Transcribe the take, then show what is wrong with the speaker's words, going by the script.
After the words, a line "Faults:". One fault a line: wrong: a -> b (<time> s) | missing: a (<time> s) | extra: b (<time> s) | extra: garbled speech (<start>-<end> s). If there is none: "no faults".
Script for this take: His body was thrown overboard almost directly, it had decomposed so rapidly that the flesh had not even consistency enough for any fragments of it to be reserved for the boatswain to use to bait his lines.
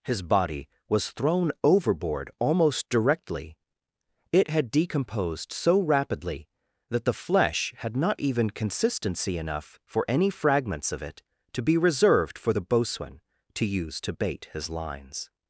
His body was thrown overboard almost directly, it had decomposed so rapidly that the flesh had not even consistency enough for any fragments of it to be reserved for the boatswain to use to bait his lines.
Faults:
no faults